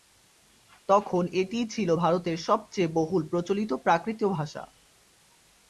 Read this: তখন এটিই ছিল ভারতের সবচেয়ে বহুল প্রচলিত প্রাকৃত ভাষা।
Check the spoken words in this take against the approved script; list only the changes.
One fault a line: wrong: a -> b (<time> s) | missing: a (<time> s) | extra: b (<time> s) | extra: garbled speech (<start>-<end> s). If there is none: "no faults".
no faults